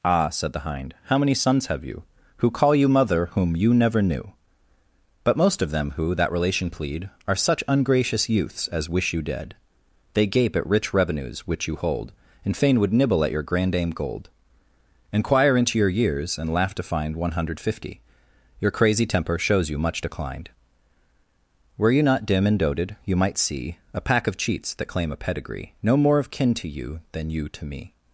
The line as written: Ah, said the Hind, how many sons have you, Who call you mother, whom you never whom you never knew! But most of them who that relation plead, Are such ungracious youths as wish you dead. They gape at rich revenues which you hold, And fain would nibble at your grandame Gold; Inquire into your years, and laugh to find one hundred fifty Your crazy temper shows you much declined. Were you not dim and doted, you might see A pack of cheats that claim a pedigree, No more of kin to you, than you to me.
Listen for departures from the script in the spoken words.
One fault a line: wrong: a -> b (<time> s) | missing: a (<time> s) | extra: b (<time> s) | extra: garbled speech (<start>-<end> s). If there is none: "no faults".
missing: whom you never (4.0 s)